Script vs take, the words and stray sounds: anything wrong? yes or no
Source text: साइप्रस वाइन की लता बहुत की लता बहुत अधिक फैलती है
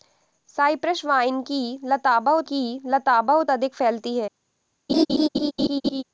yes